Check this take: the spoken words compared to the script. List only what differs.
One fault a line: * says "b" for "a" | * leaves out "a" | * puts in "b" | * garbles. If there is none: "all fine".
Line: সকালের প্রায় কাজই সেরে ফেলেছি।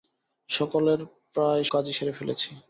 all fine